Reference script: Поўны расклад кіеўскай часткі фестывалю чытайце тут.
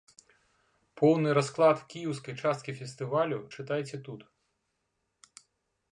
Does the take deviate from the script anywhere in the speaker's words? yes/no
no